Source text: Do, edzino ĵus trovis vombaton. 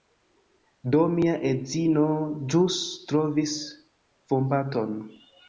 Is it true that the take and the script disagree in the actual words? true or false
true